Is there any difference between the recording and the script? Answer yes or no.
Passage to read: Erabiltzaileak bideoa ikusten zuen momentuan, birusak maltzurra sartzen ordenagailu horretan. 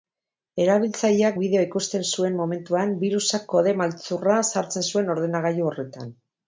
yes